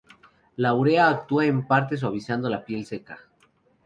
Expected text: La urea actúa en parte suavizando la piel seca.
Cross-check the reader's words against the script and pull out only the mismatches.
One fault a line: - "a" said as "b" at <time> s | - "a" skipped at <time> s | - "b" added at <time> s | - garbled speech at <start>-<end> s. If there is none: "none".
none